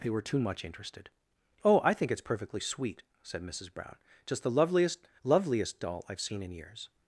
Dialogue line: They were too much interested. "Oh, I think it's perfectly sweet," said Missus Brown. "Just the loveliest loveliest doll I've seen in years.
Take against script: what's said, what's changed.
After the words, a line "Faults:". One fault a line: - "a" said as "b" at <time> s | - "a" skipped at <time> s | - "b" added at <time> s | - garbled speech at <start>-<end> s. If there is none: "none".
They were too much interested. "Oh, I think it's perfectly sweet," said Missus Brown. "Just the loveliest loveliest doll I've seen in years.
Faults:
none